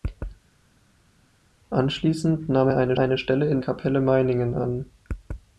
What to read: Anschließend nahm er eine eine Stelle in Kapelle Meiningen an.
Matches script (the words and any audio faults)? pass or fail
pass